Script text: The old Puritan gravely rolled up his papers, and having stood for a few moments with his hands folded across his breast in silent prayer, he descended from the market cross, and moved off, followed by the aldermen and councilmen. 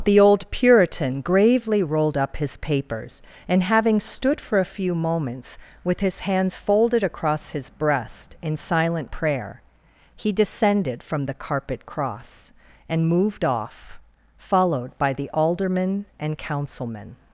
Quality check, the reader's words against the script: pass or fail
fail